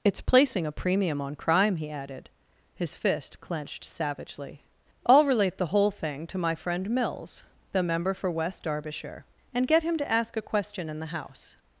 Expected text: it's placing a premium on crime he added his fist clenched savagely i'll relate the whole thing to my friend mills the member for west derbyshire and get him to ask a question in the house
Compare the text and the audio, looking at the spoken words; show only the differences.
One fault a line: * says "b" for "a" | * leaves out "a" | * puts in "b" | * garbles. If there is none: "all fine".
all fine